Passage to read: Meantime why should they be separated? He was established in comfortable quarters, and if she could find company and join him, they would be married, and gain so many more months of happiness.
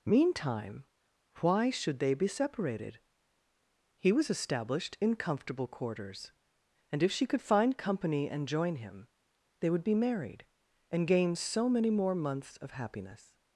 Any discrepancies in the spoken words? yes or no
no